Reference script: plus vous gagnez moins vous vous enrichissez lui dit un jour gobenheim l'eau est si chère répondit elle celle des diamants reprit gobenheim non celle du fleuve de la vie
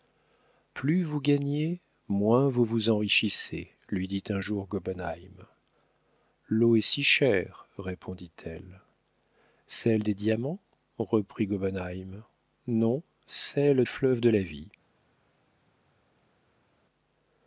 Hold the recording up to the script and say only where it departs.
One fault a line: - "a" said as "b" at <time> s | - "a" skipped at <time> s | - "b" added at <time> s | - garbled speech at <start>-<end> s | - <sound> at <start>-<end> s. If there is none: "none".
- "du" skipped at 13.8 s